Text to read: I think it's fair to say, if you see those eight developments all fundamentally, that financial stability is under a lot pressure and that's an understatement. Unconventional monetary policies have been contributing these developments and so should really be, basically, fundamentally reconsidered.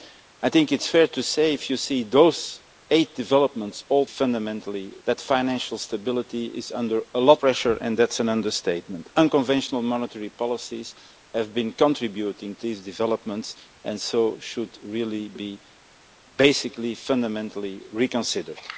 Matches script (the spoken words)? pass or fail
pass